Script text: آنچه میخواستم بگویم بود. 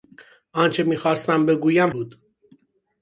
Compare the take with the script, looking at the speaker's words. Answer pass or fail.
pass